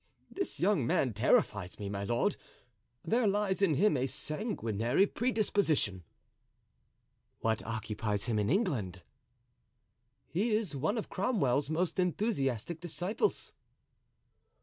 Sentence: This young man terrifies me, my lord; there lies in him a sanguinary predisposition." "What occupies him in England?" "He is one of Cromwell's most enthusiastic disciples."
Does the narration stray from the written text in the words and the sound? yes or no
no